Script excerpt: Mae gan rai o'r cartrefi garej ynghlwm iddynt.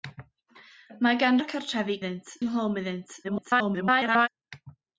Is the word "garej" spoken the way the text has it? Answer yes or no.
no